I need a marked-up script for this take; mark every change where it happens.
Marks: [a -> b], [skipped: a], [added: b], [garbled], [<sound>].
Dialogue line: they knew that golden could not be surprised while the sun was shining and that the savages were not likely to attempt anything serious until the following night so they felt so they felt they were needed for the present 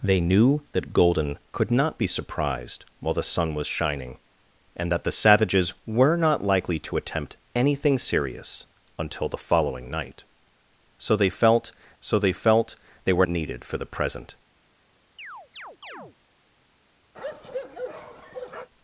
they knew that golden could not be surprised while the sun was shining and that the savages were not likely to attempt anything serious until the following night so they felt so they felt they were needed for the present [chirp] [bark]